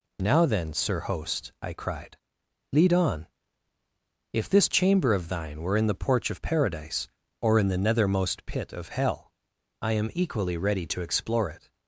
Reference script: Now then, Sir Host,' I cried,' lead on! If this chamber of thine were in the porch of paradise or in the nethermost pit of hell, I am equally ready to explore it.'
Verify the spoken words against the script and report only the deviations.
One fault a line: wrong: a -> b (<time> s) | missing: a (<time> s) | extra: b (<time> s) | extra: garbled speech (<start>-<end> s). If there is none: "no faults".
no faults